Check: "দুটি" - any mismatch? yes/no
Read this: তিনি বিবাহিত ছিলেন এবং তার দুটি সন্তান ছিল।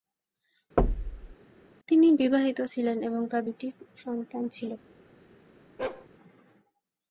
no